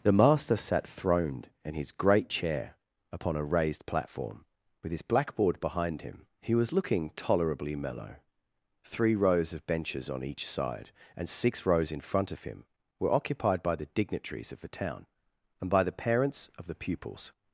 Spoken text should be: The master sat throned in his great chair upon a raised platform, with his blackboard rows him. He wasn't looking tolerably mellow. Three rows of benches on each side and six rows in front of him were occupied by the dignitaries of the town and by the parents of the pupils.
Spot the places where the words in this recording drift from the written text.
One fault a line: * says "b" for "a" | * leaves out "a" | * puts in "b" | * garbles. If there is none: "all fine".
* says "behind" for "rows"
* says "was" for "wasn't"